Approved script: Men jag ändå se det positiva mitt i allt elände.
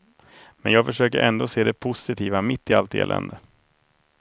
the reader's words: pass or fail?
fail